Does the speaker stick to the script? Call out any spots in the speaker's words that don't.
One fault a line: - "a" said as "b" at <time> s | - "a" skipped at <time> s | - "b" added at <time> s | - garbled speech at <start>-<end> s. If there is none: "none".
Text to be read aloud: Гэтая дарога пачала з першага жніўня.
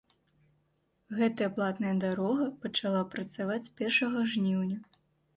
- "платная" added at 1.6 s
- "працаваць" added at 3.1 s